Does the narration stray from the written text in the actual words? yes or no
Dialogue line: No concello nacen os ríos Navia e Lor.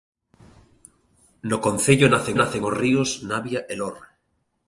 yes